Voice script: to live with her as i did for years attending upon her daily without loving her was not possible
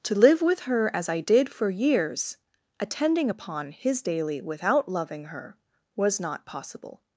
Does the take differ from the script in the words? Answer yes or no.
yes